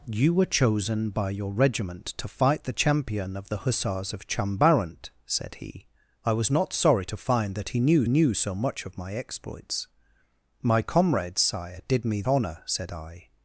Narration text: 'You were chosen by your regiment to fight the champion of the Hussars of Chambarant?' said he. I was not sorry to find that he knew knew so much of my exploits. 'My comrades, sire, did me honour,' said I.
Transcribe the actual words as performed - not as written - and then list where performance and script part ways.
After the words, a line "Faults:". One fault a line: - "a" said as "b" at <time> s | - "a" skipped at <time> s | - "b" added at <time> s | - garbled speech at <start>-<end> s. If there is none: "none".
'You were chosen by your regiment to fight the champion of the Hussars of Chambarant?' said he. I was not sorry to find that he knew knew so much of my exploits. 'My comrades, sire, did me honour,' said I.
Faults:
none